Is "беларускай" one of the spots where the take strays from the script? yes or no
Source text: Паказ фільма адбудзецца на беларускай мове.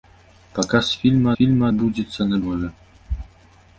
yes